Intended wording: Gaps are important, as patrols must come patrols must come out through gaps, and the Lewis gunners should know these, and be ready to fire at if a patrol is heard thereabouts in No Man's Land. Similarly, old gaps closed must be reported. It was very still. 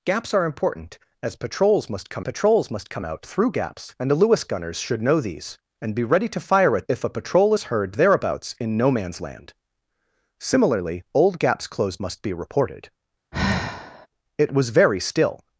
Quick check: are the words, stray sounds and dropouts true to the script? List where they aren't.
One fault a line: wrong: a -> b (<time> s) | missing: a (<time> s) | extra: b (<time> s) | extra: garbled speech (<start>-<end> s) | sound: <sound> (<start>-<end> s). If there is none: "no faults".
sound: sigh (13.3-14.1 s)